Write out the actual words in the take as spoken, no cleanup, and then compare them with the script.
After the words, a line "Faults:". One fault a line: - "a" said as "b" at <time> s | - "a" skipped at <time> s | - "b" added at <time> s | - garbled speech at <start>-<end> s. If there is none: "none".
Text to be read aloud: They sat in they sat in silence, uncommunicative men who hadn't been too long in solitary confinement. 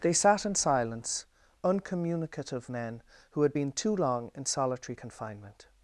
They sat in silence, uncommunicative men who had been too long in solitary confinement.
Faults:
- "they sat in" skipped at 0.6 s
- "hadn't" said as "had" at 3.4 s